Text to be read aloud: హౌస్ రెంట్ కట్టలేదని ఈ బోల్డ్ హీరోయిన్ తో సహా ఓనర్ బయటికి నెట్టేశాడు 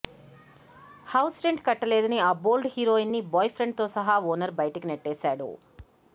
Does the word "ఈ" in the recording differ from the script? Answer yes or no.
yes